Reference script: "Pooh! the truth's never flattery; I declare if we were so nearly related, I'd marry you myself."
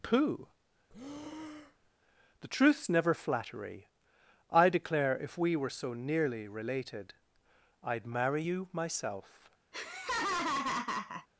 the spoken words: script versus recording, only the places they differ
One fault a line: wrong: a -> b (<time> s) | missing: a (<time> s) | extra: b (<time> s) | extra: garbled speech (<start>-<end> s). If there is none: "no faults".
no faults